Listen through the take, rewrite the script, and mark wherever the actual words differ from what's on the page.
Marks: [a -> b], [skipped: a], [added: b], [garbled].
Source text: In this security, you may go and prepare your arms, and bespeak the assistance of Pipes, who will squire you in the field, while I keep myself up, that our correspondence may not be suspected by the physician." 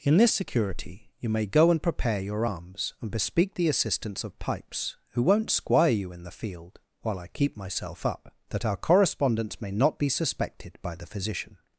In this security, you may go and prepare your arms, and bespeak the assistance of Pipes, who [will -> won't] squire you in the field, while I keep myself up, that our correspondence may not be suspected by the physician."